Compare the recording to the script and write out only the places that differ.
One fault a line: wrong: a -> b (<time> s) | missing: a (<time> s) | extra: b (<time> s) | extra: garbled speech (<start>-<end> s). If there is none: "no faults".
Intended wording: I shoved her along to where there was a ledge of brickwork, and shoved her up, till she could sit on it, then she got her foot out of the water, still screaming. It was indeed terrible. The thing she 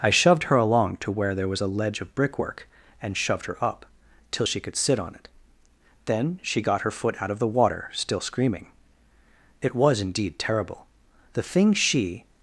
no faults